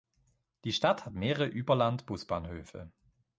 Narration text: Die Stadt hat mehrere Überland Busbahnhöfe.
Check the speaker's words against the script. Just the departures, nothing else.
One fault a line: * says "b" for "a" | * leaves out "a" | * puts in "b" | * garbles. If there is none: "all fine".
all fine